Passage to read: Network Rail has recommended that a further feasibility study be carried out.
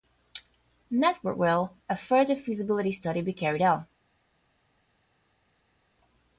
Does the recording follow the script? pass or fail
fail